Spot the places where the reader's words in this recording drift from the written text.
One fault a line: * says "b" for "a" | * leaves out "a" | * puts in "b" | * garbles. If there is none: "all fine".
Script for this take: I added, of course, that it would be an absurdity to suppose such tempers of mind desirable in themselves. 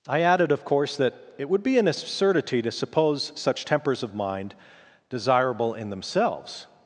all fine